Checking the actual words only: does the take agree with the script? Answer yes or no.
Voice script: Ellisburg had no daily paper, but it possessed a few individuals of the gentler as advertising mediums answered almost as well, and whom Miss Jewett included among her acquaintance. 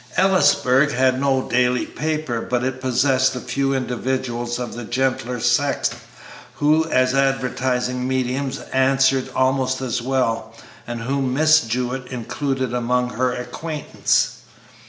no